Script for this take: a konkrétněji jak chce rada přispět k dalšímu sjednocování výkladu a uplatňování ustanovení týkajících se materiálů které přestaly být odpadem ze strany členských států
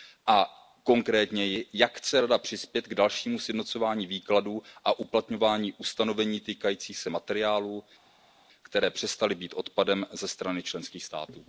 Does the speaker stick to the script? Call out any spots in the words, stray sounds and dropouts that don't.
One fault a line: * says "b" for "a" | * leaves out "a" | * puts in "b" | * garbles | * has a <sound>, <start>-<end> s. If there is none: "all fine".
all fine